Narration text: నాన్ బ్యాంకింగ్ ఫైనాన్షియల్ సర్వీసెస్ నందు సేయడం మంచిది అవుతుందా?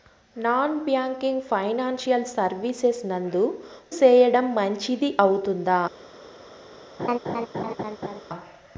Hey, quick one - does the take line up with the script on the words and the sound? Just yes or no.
no